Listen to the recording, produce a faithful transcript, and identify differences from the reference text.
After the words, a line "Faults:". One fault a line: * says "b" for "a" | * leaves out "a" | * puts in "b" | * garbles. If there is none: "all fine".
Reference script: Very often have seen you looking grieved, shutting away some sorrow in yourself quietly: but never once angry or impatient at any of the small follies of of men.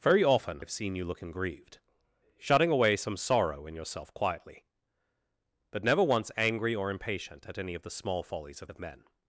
Very often have seen you looking grieved, shutting away some sorrow in yourself quietly: but never once angry or impatient at any of the small follies of of men.
Faults:
all fine